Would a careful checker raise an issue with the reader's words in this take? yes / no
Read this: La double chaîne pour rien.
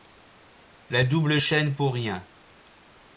no